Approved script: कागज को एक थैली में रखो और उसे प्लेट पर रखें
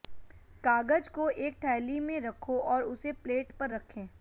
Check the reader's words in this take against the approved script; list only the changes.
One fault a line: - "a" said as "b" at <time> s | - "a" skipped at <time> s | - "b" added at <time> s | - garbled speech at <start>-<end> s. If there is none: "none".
none